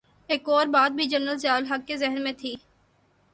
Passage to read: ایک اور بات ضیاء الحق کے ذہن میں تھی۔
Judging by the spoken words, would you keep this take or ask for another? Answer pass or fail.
fail